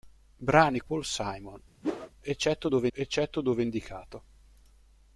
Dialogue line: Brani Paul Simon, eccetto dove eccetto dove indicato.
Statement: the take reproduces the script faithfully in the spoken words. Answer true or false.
true